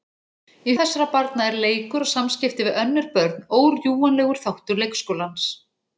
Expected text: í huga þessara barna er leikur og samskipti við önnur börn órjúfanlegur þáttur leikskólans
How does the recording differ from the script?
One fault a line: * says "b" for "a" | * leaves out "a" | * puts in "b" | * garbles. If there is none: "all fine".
* leaves out "huga"